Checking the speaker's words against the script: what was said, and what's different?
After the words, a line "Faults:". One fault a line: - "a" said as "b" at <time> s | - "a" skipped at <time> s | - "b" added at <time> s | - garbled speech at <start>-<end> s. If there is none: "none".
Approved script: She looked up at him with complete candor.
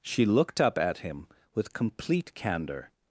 She looked up at him with complete candor.
Faults:
none